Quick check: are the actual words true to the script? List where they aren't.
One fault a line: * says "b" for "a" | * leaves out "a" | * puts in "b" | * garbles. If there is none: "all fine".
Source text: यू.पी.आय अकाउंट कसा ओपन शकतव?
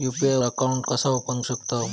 all fine